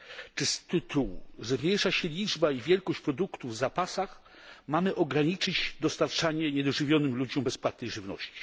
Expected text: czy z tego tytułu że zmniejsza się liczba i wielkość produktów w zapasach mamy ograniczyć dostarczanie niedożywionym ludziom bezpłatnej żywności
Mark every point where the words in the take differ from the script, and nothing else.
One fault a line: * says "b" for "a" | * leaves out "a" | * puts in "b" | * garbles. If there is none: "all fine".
* leaves out "tego"